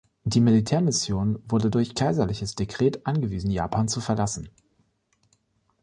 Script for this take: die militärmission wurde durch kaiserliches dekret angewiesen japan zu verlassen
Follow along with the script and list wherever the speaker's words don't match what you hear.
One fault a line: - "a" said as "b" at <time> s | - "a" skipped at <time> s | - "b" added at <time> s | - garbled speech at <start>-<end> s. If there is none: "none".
none